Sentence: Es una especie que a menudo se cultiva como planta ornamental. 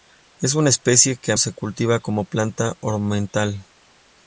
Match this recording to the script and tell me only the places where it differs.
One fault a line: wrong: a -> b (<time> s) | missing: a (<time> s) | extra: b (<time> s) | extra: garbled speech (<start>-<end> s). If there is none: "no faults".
missing: menudo (1.4 s)